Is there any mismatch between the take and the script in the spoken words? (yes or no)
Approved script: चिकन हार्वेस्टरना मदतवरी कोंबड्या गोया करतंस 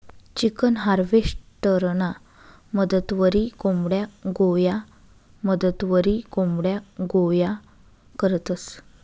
yes